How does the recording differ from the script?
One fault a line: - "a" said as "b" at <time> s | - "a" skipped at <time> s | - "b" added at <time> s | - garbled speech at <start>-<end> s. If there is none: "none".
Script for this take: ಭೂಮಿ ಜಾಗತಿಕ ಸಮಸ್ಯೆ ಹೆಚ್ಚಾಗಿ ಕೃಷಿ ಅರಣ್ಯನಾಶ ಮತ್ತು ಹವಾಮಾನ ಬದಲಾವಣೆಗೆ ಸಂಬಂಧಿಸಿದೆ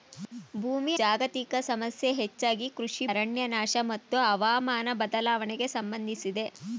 none